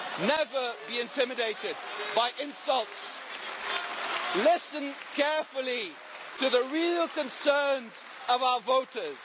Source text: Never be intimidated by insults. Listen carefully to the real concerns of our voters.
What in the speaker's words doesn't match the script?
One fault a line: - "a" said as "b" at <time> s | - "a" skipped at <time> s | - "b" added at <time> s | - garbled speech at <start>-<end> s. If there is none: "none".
none